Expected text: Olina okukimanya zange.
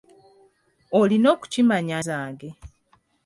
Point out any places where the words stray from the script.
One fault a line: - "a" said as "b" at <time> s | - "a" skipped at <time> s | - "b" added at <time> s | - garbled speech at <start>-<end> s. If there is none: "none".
none